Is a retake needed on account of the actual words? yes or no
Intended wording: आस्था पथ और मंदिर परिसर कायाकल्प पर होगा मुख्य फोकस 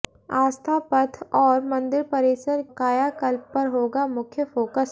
no